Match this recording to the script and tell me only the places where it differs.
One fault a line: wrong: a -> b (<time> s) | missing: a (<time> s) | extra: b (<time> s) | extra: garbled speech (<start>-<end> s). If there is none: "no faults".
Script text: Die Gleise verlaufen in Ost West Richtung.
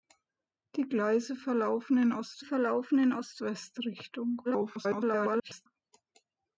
extra: verlaufen in Ost (2.4 s)
extra: garbled speech (4.4-5.7 s)